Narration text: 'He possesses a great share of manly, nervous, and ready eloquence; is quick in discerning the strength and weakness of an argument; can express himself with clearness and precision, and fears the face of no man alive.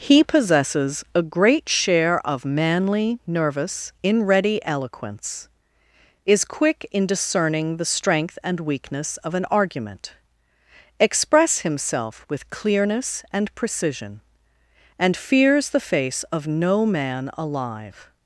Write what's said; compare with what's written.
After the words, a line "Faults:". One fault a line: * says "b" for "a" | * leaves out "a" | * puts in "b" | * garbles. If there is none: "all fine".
'He possesses a great share of manly, nervous, in ready eloquence; is quick in discerning the strength and weakness of an argument; express himself with clearness and precision, and fears the face of no man alive.
Faults:
* says "in" for "and"
* leaves out "can"